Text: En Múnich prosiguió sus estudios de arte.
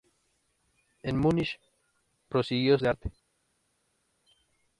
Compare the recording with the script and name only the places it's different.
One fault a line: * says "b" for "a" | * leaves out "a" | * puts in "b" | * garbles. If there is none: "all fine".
* leaves out "sus estudios"